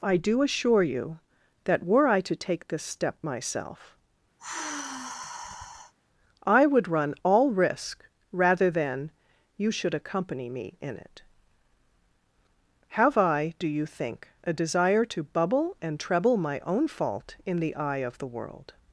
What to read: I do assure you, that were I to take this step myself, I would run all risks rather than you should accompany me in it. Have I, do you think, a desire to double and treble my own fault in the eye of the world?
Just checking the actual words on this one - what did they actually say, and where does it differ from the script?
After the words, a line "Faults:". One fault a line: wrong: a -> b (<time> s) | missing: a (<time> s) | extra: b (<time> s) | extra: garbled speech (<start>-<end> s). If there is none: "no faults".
I do assure you, that were I to take this step myself, I would run all risk rather than you should accompany me in it. Have I, do you think, a desire to bubble and treble my own fault in the eye of the world?
Faults:
wrong: risks -> risk (7.5 s)
wrong: double -> bubble (15.2 s)